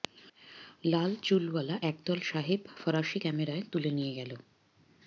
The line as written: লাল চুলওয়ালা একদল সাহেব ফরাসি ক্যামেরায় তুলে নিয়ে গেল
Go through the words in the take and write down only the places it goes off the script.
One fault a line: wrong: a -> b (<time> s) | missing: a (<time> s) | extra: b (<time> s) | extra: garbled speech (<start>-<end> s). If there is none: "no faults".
no faults